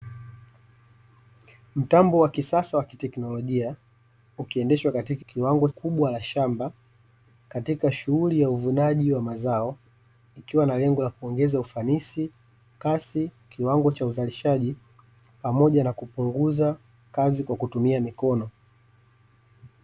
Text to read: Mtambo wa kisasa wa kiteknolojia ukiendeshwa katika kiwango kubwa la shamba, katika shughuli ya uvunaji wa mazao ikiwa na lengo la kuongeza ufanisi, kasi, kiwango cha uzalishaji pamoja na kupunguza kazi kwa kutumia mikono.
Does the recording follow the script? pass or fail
pass